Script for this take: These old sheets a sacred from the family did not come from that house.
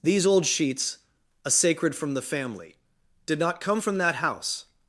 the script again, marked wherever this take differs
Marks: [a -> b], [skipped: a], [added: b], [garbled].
These old sheets a sacred from the family did not come from that house.